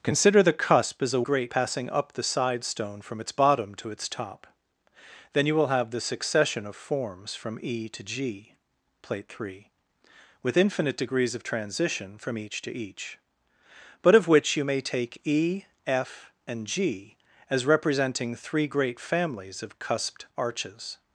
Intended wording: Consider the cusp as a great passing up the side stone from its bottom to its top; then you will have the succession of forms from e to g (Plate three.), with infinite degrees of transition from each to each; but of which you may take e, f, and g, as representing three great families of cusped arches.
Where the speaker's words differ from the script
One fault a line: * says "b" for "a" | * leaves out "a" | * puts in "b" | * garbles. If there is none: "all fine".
all fine